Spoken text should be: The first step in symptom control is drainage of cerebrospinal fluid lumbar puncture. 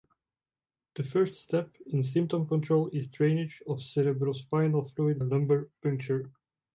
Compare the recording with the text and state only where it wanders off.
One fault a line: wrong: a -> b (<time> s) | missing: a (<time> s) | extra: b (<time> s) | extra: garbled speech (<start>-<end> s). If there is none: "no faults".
no faults